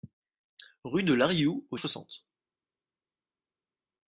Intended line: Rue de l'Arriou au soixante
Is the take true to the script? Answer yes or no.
yes